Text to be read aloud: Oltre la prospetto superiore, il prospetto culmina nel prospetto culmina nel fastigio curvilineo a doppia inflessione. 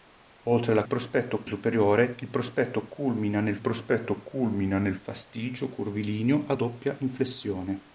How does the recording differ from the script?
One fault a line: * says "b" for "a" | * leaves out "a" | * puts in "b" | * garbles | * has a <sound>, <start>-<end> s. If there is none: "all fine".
all fine